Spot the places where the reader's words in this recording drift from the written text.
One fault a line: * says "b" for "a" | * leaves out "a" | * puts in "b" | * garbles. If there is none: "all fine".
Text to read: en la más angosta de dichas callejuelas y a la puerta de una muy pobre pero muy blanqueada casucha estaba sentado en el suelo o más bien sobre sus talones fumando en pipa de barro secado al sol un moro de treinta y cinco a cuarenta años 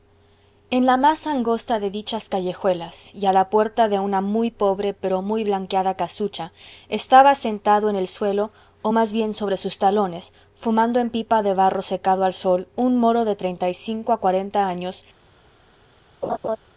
all fine